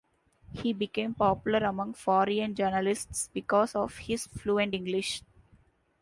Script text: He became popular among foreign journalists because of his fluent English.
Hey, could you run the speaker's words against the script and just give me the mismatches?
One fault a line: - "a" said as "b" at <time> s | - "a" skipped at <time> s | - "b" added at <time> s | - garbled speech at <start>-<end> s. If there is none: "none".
none